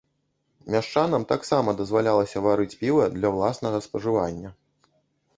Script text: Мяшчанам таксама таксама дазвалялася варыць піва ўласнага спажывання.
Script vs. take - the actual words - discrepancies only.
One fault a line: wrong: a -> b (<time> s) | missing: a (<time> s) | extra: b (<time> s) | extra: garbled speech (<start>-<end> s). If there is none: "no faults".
missing: таксама (1.8 s)
extra: для (3.2 s)